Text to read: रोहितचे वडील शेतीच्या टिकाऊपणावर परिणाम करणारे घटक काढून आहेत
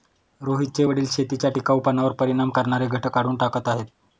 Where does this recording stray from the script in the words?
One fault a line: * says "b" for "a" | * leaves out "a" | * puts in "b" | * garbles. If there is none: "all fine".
* puts in "टाकत"